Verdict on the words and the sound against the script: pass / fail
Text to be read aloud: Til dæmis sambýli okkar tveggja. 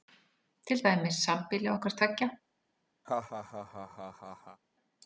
fail